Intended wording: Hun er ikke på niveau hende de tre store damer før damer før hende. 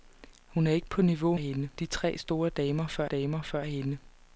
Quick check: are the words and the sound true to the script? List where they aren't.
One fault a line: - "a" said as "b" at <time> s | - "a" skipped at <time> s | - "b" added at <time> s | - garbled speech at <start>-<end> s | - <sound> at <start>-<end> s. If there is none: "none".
none